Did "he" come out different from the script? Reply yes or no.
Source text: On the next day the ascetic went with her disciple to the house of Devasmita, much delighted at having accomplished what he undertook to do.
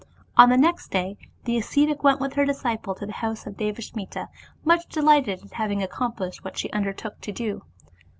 yes